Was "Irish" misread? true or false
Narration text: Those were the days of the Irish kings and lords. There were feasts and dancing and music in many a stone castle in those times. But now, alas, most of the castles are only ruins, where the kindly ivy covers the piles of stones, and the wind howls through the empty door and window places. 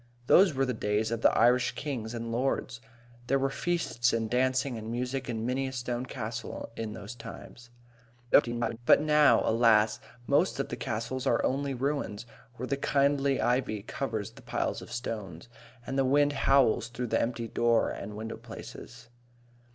false